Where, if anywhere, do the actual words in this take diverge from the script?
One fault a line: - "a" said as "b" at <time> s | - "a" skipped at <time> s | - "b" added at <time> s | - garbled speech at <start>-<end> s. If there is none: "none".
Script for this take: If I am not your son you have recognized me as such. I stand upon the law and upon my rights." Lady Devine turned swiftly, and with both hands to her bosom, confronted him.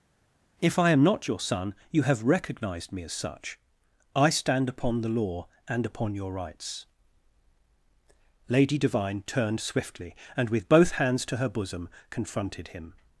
- "my" said as "your" at 6.1 s